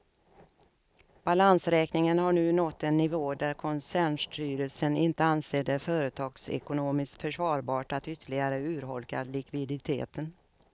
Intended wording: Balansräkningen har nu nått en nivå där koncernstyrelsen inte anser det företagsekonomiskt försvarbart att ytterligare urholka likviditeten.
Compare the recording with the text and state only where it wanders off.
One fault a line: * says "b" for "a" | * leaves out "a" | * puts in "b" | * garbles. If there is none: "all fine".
all fine